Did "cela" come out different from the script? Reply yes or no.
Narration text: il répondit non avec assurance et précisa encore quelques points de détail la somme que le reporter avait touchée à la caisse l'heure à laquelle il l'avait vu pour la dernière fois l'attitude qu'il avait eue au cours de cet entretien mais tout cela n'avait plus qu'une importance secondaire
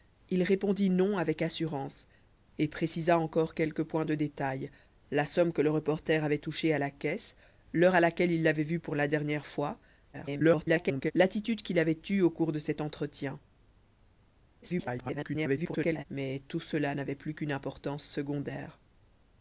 no